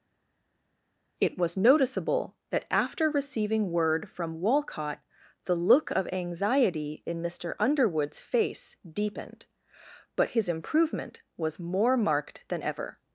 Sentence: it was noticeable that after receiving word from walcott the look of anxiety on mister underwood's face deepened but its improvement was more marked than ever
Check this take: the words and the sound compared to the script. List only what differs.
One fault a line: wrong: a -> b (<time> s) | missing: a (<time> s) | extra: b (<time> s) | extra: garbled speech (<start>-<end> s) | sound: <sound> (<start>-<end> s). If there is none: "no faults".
wrong: on -> in (7.1 s)
wrong: its -> his (10.3 s)